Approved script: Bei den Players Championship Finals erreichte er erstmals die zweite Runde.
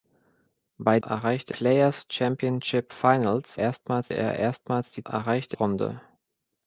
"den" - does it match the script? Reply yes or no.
no